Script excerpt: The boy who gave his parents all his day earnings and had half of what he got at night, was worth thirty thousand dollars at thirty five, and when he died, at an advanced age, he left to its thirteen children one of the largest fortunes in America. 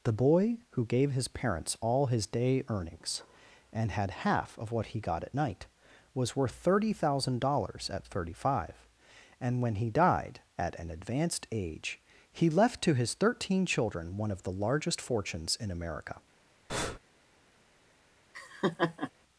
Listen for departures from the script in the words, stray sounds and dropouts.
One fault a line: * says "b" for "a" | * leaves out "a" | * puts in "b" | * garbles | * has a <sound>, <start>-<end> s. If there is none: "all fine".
* says "his" for "its"
* has a breath, 16.7-17.0 s
* has a laugh, 18.3-19.1 s